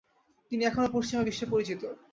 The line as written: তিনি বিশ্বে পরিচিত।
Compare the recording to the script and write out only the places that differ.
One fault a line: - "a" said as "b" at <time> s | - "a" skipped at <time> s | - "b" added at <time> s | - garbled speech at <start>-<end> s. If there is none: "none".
- "এখনও পশ্চিমা" added at 0.7 s